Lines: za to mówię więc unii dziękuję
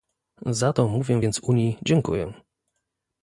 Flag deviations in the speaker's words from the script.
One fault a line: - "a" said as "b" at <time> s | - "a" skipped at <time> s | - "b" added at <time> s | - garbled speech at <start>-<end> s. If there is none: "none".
none